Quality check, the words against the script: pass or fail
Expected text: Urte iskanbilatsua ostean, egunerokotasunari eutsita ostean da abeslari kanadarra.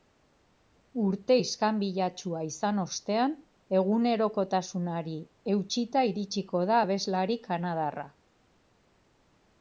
fail